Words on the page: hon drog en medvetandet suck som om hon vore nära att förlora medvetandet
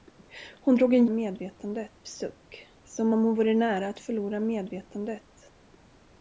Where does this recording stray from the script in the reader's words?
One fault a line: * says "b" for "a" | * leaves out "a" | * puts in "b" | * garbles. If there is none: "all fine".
all fine